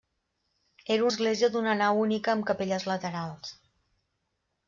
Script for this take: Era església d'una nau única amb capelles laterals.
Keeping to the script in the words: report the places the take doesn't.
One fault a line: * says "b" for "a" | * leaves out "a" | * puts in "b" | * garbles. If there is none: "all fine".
all fine